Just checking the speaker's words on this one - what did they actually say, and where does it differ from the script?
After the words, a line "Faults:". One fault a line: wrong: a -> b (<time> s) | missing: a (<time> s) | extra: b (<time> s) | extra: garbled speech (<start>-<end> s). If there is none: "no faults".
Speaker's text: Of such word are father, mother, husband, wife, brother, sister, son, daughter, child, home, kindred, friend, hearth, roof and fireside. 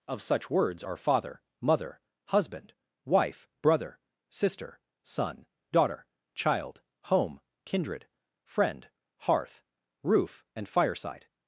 Of such words are father, mother, husband, wife, brother, sister, son, daughter, child, home, kindred, friend, hearth, roof and fireside.
Faults:
wrong: word -> words (0.5 s)